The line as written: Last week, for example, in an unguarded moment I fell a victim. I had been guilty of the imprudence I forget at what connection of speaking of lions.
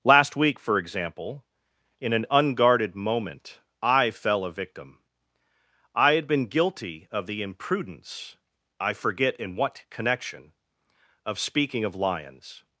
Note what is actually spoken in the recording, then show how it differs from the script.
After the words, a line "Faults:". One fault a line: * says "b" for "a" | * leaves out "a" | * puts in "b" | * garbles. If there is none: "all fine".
Last week, for example, in an unguarded moment I fell a victim. I had been guilty of the imprudence I forget in what connection of speaking of lions.
Faults:
* says "in" for "at"